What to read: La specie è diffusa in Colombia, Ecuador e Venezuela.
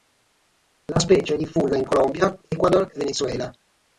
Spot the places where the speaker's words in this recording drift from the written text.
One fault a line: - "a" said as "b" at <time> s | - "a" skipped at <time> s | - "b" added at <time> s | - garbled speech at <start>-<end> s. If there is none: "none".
none